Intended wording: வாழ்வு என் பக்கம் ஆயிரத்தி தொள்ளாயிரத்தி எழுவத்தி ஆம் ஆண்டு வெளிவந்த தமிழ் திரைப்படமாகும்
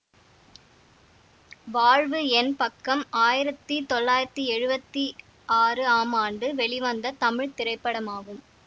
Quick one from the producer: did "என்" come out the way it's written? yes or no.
yes